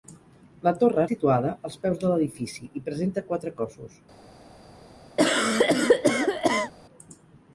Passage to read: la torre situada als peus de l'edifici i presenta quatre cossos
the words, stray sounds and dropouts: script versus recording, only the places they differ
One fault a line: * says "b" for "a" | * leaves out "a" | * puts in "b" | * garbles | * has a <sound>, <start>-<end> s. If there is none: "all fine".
* has a cough, 5.2-6.7 s